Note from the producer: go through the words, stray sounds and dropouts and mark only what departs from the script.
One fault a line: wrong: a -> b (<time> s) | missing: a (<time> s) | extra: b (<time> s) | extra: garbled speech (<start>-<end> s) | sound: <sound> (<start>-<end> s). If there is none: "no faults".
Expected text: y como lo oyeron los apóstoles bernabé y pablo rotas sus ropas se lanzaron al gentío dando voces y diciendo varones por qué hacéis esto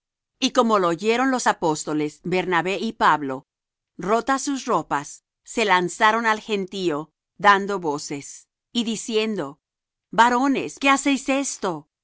missing: por (10.8 s)